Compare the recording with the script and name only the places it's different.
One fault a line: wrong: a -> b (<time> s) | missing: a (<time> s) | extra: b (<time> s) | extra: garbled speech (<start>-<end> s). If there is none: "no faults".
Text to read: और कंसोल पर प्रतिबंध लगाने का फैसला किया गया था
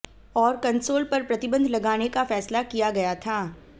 no faults